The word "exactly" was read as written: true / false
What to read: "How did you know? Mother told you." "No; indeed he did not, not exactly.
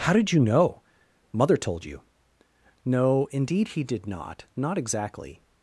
true